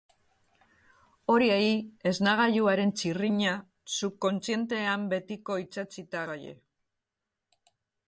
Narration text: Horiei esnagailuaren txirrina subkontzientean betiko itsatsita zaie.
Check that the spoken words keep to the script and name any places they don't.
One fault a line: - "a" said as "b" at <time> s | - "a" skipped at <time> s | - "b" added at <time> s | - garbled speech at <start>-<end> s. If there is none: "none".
none